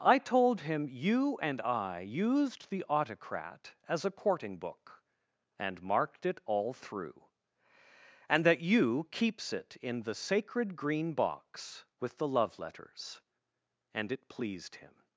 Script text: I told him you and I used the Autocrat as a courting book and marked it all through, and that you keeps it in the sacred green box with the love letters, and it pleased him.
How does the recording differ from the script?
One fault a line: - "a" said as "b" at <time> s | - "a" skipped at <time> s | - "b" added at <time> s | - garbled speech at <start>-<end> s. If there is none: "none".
none